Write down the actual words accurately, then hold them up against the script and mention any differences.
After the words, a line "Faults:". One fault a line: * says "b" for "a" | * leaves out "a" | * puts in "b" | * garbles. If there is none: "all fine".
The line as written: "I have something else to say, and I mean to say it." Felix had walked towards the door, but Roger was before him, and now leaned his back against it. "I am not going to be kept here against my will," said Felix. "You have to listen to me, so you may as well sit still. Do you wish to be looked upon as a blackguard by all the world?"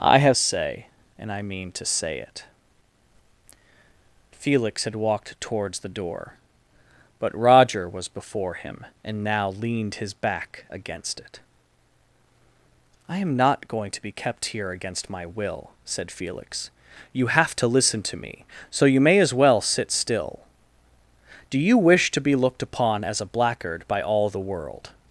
"I have say, and I mean to say it." Felix had walked towards the door, but Roger was before him, and now leaned his back against it. "I am not going to be kept here against my will," said Felix. "You have to listen to me, so you may as well sit still. Do you wish to be looked upon as a blackguard by all the world?"
Faults:
* leaves out "something else to"